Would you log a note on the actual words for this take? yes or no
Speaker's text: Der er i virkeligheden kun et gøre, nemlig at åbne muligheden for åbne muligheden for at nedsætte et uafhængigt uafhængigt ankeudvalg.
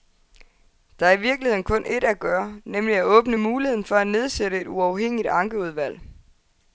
yes